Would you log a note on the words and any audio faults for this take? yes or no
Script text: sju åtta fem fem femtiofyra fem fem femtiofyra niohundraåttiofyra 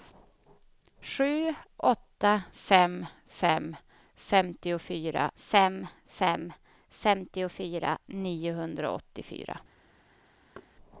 yes